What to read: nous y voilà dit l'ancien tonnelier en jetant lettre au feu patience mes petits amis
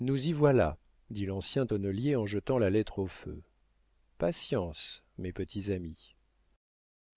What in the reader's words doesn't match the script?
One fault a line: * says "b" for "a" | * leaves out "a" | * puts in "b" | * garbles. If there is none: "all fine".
* puts in "la"